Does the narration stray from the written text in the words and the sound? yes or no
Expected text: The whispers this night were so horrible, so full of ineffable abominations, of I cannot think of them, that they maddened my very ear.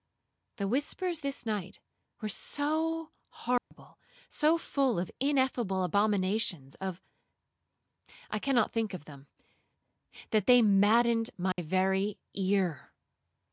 yes